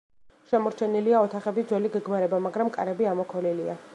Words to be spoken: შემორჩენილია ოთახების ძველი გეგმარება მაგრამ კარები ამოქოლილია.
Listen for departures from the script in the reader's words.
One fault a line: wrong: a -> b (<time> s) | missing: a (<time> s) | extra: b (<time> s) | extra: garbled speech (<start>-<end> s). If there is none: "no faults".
no faults